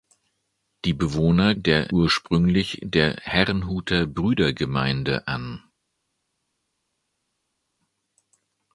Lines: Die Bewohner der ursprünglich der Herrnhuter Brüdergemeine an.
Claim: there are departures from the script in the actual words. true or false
false